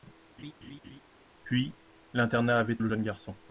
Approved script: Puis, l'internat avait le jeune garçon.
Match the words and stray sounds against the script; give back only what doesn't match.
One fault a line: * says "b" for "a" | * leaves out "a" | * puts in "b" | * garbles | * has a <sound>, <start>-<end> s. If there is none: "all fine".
* has a laugh, 0.4-1.0 s